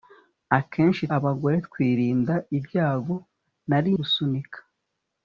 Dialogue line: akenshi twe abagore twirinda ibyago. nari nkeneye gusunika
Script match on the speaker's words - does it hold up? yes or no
no